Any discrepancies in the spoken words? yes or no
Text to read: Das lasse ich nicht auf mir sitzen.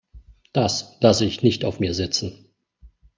no